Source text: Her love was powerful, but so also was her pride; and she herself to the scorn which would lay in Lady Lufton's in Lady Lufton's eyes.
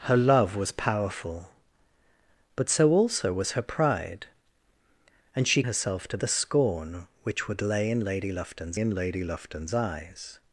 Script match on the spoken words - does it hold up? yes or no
yes